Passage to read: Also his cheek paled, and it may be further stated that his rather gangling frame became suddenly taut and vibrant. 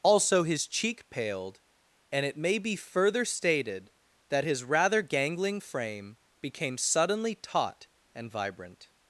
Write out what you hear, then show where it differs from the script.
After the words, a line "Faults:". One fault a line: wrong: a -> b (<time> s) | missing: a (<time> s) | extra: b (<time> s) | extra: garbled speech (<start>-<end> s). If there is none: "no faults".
Also his cheek paled, and it may be further stated that his rather gangling frame became suddenly taut and vibrant.
Faults:
no faults